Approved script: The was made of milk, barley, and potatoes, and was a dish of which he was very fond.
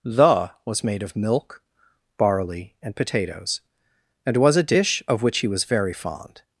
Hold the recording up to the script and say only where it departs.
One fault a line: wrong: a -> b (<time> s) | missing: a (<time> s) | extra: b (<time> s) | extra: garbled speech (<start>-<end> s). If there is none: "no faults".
no faults